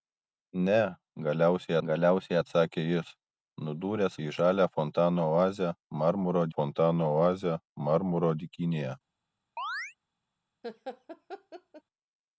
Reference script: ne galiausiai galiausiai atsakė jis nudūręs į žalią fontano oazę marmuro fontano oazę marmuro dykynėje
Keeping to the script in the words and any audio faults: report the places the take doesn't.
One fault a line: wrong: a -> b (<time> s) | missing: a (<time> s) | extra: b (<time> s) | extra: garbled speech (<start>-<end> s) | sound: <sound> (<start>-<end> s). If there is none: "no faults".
sound: chirp (9.6-10.0 s)
sound: laugh (10.6-11.8 s)